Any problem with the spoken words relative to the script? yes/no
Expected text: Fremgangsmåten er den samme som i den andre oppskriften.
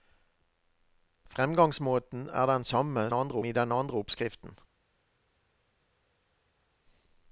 yes